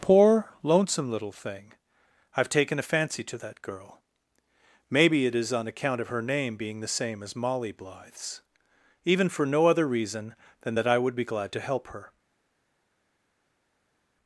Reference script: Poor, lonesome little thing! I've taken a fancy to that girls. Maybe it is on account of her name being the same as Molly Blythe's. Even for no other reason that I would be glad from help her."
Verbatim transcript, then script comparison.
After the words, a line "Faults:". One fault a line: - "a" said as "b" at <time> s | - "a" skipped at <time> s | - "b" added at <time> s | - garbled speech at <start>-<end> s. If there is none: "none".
Poor, lonesome little thing! I've taken a fancy to that girl. Maybe it is on account of her name being the same as Molly Blythe's. Even for no other reason than that I would be glad to help her."
Faults:
- "girls" said as "girl" at 3.6 s
- "than" added at 10.6 s
- "from" said as "to" at 11.5 s